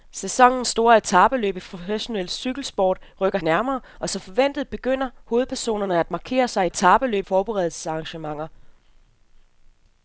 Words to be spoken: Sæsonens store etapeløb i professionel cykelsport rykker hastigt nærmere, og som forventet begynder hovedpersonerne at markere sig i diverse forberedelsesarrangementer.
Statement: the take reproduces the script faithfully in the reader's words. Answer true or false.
false